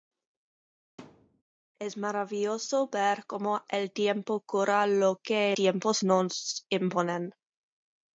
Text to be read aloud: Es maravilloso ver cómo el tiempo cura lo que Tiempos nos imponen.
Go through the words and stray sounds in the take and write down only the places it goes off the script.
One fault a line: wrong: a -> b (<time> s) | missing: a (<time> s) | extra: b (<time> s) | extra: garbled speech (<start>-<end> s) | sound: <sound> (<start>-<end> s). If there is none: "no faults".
sound: thud (1.0-1.4 s)